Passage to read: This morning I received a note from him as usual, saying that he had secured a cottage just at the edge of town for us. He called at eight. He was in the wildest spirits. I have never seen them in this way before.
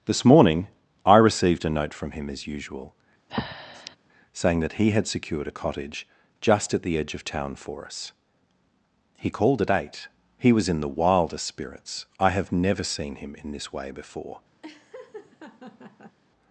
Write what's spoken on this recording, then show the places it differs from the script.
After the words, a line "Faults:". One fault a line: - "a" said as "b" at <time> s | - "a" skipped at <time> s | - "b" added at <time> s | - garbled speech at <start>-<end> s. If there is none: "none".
This morning I received a note from him as usual, saying that he had secured a cottage just at the edge of town for us. He called at eight. He was in the wildest spirits. I have never seen him in this way before.
Faults:
- "them" said as "him" at 13.2 s